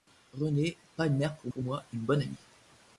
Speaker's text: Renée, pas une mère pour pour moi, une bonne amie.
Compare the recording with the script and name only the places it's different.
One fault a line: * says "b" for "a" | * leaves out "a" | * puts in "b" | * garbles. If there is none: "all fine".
all fine